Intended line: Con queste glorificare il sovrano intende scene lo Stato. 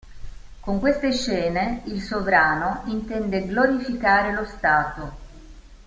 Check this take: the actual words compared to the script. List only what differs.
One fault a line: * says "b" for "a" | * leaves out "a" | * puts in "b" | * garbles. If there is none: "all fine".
* says "scene" for "glorificare"
* says "glorificare" for "scene"